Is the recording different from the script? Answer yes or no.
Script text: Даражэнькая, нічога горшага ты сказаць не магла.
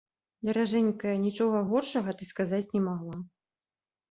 no